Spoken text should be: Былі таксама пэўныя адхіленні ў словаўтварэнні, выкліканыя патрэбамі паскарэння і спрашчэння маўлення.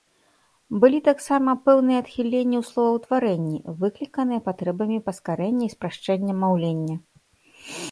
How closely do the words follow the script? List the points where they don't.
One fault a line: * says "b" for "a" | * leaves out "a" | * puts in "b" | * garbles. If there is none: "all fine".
all fine